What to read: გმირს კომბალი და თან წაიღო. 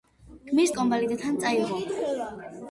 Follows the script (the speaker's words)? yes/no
yes